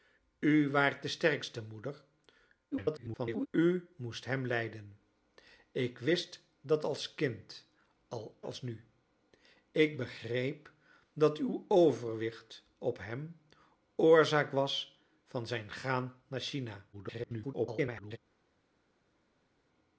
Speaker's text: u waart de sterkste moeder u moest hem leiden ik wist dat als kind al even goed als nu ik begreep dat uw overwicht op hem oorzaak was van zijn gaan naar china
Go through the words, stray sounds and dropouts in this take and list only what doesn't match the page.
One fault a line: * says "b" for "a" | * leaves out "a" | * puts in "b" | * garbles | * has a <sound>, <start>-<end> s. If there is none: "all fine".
* garbles
* leaves out "even goed"
* garbles